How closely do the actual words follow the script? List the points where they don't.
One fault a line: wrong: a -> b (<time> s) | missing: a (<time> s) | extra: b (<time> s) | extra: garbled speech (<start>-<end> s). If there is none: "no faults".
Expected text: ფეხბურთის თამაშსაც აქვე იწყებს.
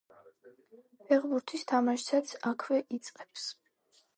no faults